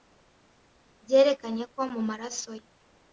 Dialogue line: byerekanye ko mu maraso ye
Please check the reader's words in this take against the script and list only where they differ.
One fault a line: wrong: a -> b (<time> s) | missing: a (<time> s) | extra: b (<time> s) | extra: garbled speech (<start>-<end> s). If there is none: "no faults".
no faults